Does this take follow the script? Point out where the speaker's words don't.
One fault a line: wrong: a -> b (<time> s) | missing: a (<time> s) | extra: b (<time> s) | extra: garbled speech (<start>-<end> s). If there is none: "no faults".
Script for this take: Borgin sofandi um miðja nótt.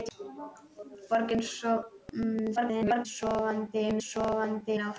extra: garbled speech (2.6-3.1 s)
wrong: miðja -> sofandi (4.1 s)